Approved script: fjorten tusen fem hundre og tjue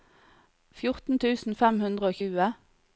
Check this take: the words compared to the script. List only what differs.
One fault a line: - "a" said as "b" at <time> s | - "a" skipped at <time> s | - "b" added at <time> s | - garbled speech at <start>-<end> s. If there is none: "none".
none